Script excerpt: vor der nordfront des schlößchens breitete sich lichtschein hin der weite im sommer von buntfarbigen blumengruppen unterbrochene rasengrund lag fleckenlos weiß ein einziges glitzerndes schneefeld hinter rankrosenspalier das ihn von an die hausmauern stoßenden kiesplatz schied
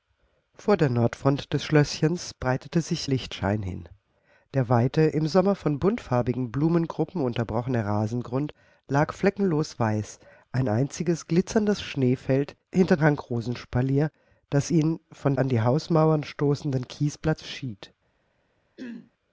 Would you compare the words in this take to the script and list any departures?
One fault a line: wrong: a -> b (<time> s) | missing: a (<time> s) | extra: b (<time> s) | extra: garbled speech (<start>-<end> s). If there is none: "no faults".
no faults